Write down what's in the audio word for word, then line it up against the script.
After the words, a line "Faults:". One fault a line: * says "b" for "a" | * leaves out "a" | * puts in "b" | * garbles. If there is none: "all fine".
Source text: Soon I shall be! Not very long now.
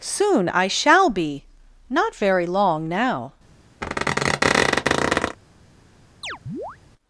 Soon I shall be! Not very long now.
Faults:
all fine